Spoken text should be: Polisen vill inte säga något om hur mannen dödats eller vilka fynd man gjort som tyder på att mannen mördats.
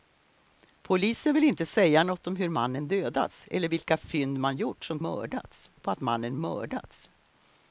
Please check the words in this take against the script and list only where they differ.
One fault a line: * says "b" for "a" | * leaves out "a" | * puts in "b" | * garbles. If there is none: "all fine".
* says "mördats" for "tyder"